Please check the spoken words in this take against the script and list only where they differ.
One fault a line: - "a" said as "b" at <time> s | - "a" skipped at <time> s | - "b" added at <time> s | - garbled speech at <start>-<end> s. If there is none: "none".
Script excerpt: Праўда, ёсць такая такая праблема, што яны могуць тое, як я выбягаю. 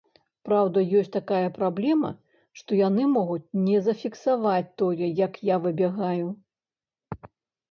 - "такая" skipped at 1.5 s
- "не зафіксаваць" added at 3.6 s